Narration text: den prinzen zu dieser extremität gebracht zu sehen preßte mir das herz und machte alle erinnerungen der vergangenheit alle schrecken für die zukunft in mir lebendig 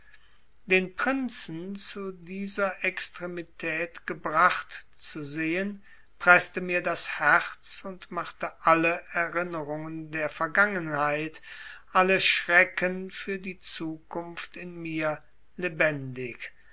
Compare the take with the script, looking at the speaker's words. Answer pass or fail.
pass